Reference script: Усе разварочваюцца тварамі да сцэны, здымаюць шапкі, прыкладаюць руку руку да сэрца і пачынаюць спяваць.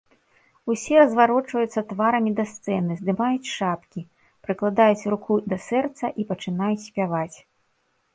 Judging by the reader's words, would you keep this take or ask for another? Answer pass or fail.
fail